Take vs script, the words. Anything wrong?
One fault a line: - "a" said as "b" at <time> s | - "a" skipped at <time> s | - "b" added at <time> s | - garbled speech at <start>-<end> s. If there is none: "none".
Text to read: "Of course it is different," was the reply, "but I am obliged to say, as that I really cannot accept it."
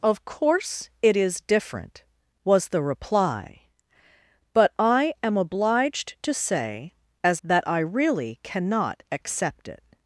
none